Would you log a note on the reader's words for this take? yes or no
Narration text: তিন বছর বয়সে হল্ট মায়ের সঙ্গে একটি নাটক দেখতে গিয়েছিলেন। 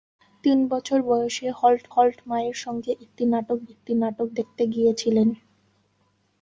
yes